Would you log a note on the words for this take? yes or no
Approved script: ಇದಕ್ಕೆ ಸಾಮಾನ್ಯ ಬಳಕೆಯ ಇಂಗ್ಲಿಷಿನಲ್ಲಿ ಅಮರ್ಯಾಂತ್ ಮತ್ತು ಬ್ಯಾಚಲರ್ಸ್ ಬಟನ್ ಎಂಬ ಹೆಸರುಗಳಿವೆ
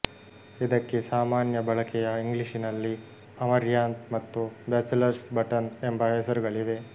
no